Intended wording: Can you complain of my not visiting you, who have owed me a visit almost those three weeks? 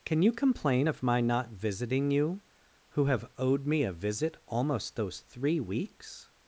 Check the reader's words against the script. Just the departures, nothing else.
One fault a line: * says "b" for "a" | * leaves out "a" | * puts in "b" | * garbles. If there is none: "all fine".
all fine